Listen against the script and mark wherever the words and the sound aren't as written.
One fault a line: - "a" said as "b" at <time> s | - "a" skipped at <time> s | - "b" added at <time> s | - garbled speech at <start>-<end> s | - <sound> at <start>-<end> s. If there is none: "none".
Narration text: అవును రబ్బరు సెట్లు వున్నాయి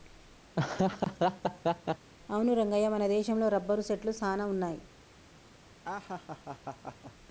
- laugh at 0.5-2.1 s
- "రంగయ్య మన దేశంలో" added at 2.5 s
- "సాన" added at 4.1 s
- laugh at 5.8-7.1 s